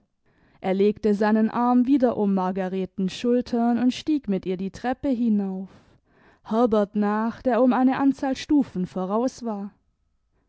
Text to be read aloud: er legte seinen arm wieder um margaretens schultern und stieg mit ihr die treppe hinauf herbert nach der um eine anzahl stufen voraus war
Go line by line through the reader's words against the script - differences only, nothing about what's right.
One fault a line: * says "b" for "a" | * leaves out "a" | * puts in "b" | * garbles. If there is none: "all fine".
all fine